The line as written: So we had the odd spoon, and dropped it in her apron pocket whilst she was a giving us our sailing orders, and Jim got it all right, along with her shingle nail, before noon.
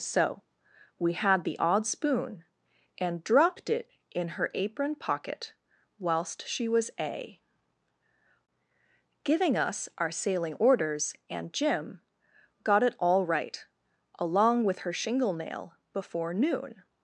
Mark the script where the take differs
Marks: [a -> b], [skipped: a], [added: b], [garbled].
So we had the odd spoon, and dropped it in her apron pocket whilst she was a giving us our sailing orders, and Jim got it all right, along with her shingle nail, before noon.